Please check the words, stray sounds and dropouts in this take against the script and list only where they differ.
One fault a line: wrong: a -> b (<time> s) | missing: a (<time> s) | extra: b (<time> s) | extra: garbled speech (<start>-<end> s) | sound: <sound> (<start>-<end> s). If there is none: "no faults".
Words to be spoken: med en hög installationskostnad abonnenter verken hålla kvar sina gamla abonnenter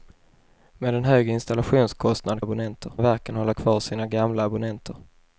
no faults